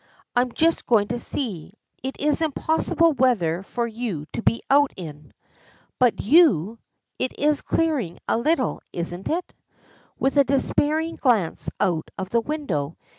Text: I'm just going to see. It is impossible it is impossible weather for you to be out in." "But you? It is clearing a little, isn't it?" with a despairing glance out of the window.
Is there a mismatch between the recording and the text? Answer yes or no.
yes